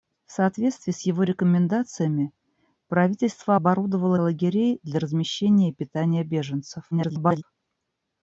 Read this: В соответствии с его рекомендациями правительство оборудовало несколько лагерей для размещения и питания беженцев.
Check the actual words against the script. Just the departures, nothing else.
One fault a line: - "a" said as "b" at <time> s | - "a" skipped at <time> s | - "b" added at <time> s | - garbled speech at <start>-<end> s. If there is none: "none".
- "несколько" skipped at 4.1 s
- garbled speech at 6.9-7.4 s